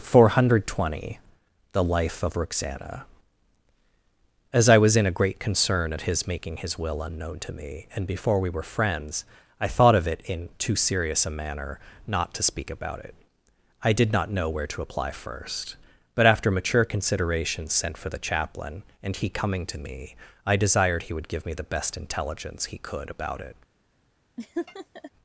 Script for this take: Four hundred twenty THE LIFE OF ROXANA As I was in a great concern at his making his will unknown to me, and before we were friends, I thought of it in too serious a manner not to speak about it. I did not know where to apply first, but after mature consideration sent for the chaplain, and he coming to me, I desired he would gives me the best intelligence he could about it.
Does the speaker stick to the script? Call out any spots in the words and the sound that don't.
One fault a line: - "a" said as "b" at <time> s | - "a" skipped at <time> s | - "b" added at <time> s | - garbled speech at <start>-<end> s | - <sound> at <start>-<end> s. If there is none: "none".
- "gives" said as "give" at 21.3 s
- laugh at 24.4-25.1 s